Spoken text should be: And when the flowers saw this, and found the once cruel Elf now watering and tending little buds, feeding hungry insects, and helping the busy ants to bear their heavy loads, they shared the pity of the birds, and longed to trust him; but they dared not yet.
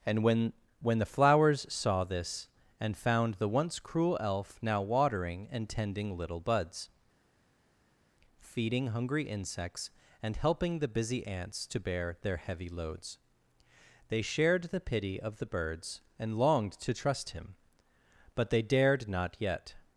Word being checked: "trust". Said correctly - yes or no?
yes